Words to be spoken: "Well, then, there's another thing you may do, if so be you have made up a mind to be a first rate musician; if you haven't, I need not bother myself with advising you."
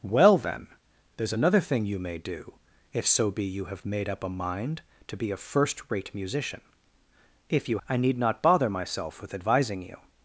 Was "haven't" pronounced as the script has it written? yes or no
no